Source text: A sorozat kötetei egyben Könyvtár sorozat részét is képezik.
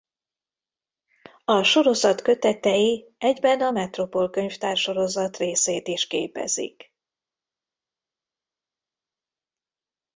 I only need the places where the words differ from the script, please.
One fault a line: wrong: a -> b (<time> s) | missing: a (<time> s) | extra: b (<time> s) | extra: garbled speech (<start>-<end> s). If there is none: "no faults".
extra: a Metropol (3.6 s)